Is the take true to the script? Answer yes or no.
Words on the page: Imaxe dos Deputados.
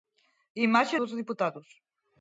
yes